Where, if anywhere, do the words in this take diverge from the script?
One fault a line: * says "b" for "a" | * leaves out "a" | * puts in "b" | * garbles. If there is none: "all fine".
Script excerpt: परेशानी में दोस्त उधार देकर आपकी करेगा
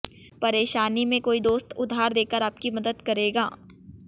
* puts in "कोई"
* puts in "मदद"